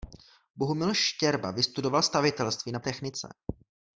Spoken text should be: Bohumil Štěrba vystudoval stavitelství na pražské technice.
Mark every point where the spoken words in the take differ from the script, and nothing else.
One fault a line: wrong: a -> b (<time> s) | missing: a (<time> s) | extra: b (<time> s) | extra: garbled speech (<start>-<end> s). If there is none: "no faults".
missing: pražské (2.8 s)